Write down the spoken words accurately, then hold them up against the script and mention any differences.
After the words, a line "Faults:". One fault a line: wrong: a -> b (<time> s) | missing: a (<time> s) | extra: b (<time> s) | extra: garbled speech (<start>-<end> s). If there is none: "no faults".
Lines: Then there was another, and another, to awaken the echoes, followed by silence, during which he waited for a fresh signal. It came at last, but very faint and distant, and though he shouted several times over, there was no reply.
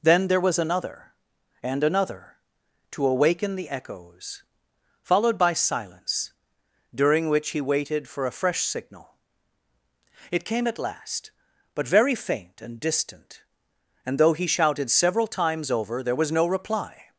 Then there was another, and another, to awaken the echoes, followed by silence, during which he waited for a fresh signal. It came at last, but very faint and distant, and though he shouted several times over, there was no reply.
Faults:
no faults